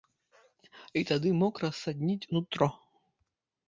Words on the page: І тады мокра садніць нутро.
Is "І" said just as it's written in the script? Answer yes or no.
yes